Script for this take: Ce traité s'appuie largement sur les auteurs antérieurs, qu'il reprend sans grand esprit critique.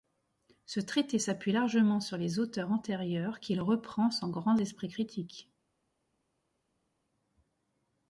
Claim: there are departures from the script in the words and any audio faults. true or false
false